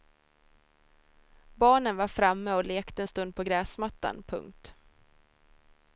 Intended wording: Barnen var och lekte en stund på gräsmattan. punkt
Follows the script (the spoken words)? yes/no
no